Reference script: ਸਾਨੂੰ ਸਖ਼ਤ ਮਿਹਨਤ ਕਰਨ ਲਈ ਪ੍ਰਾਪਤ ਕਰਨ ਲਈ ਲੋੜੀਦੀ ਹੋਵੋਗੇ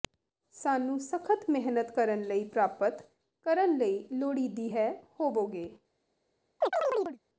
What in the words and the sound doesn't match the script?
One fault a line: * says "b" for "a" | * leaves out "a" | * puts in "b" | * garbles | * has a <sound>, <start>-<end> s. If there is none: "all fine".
* puts in "ਹੈ"
* has a chirp, 6.6-7.2 s